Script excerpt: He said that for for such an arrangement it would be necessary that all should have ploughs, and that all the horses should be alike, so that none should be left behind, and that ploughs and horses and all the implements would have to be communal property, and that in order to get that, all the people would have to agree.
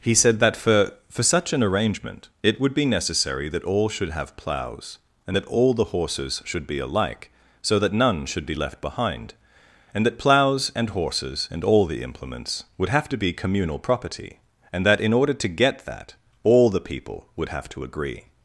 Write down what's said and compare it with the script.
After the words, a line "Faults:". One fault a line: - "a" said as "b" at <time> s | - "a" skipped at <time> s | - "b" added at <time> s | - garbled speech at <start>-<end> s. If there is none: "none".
He said that for for such an arrangement it would be necessary that all should have ploughs, and that all the horses should be alike, so that none should be left behind, and that ploughs and horses and all the implements would have to be communal property, and that in order to get that, all the people would have to agree.
Faults:
none